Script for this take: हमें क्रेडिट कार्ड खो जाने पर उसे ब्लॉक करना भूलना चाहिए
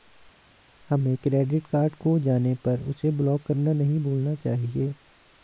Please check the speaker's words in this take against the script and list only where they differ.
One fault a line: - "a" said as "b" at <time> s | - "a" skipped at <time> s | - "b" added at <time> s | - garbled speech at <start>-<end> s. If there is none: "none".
- "नहीं" added at 3.7 s